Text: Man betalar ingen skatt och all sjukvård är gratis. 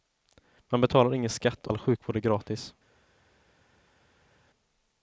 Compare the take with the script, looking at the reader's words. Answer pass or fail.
fail